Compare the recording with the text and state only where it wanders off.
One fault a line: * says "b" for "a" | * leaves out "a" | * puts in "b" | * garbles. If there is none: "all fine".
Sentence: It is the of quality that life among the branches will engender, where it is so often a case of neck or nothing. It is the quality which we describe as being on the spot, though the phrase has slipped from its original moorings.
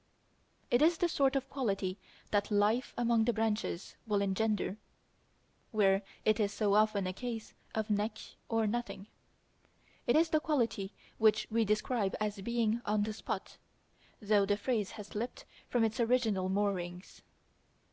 * puts in "sort"